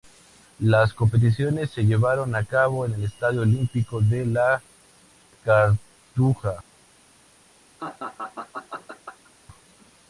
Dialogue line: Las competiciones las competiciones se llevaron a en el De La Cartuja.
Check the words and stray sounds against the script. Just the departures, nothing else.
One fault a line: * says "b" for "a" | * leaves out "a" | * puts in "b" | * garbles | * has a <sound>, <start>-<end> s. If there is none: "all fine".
* leaves out "las competiciones"
* puts in "cabo"
* puts in "Estadio Olímpico"
* has a laugh, 7.8-9.3 s